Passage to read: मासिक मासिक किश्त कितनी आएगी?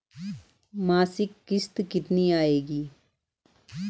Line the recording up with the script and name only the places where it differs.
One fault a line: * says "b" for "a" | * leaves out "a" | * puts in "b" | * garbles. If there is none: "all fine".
* leaves out "मासिक"